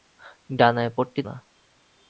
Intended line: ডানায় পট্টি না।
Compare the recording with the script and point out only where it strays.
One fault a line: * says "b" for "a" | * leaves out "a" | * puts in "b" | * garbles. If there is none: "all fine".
all fine